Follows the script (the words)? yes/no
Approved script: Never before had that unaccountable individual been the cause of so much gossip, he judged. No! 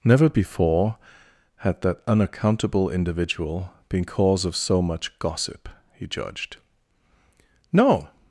no